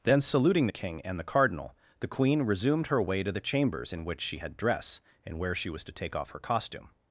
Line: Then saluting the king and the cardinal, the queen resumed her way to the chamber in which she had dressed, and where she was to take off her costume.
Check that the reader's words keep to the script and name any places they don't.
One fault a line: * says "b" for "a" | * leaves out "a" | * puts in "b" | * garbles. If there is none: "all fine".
* says "chambers" for "chamber"
* says "dress" for "dressed"